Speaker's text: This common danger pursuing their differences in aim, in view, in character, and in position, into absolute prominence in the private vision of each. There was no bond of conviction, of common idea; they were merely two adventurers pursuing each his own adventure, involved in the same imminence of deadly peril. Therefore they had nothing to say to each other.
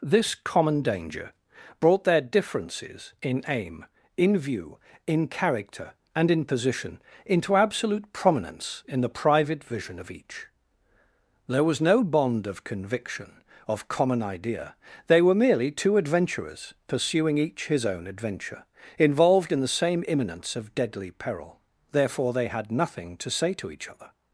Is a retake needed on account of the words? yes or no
yes